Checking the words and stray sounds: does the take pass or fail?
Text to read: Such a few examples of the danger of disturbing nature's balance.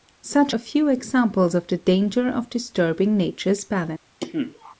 fail